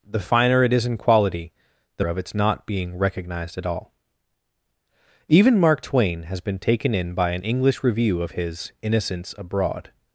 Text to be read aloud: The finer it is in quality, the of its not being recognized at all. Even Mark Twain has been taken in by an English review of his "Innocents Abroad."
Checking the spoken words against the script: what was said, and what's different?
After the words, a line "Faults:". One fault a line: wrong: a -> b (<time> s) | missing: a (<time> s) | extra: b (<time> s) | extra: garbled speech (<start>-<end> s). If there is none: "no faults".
The finer it is in quality, the of its not being recognized at all. Even Mark Twain has been taken in by an English review of his "Innocents Abroad."
Faults:
no faults